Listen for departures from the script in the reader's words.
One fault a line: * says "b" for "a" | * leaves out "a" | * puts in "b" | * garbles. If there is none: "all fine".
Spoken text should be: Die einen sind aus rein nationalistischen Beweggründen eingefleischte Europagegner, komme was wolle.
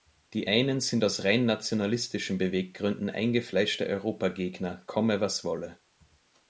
all fine